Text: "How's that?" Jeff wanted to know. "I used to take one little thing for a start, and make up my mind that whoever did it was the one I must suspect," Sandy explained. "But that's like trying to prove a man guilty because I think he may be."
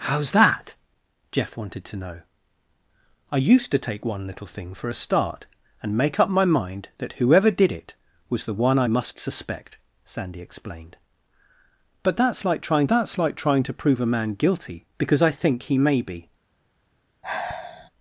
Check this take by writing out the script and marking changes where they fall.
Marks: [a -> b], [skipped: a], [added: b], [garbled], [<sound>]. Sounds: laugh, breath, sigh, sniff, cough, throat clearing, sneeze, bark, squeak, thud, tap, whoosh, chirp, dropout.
"How's that?" Jeff wanted to know. "I used to take one little thing for a start, and make up my mind that whoever did it was the one I must suspect," Sandy explained. "But that's like trying [added: that's like trying] to prove a man guilty because I think he may be." [sigh]